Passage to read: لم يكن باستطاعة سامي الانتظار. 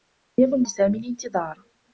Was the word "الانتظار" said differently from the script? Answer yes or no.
no